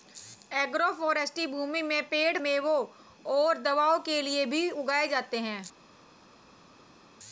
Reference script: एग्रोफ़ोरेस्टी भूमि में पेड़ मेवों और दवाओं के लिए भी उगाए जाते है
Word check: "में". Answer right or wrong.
right